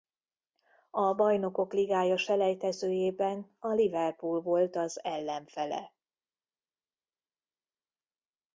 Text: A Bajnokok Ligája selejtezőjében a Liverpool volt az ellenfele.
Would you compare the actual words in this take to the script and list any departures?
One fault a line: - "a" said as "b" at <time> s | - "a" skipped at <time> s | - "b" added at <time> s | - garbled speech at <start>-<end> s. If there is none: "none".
none